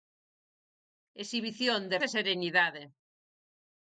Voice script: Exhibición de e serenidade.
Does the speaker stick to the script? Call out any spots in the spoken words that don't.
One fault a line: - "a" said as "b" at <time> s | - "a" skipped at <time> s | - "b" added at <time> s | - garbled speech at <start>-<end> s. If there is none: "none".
none